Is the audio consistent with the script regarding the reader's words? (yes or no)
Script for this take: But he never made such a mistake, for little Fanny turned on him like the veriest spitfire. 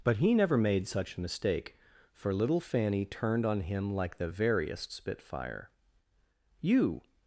no